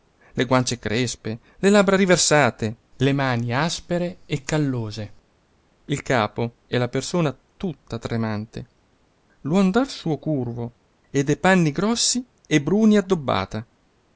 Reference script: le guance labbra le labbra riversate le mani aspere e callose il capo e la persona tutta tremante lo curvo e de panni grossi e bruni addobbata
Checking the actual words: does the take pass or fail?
fail